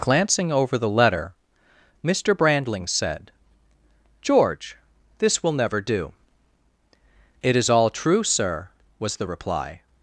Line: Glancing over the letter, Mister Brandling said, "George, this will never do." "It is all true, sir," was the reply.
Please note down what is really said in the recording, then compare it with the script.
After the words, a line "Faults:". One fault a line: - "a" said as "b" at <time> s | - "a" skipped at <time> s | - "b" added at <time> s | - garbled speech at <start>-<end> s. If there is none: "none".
Glancing over the letter, Mister Brandling said, "George, this will never do." "It is all true, sir," was the reply.
Faults:
none